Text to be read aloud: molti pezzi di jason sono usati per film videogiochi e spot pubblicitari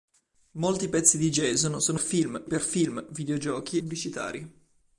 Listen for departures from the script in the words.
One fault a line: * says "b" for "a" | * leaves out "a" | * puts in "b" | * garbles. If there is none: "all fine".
* says "film" for "usati"
* leaves out "e spot"